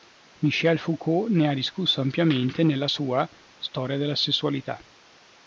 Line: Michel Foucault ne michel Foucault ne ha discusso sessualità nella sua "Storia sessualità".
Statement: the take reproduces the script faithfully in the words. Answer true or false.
false